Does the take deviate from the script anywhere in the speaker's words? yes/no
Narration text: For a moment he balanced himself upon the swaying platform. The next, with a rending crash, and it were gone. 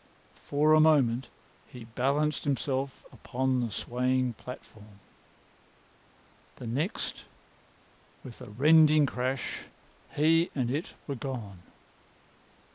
yes